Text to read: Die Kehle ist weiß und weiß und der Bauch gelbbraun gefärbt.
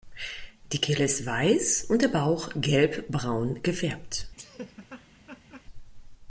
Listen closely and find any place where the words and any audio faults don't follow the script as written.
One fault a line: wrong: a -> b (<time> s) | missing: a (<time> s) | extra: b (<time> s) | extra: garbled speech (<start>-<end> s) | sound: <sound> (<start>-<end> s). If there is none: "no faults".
missing: weiß und (2.0 s)
sound: laugh (4.4-5.6 s)